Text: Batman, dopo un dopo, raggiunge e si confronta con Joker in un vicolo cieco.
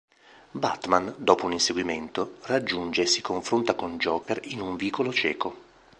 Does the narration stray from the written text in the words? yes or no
yes